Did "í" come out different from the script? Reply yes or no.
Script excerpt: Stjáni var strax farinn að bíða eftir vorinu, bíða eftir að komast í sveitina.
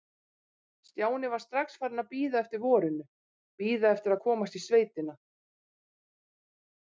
no